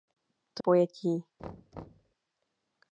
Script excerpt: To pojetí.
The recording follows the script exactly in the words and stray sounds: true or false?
false